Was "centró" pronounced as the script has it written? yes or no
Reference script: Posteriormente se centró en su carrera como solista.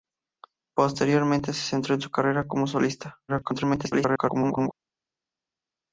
yes